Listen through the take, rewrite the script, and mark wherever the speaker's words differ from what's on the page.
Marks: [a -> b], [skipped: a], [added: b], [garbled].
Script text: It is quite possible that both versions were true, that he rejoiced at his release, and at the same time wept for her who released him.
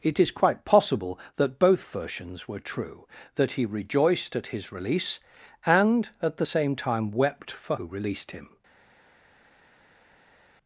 It is quite possible that both versions were true, that he rejoiced at his release, and at the same time wept for [skipped: her] who released him.